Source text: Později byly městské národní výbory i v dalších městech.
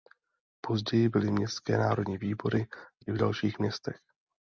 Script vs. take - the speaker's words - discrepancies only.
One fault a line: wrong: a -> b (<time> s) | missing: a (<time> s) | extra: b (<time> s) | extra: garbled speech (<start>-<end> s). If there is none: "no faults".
no faults